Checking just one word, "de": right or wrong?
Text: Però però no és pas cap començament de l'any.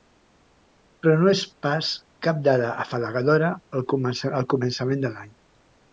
right